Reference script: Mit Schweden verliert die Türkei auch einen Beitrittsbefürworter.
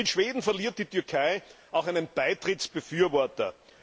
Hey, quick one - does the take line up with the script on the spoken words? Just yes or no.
yes